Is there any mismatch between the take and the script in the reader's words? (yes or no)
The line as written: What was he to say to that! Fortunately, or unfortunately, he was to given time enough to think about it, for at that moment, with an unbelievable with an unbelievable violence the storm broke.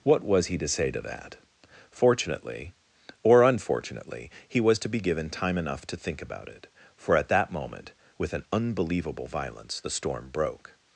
yes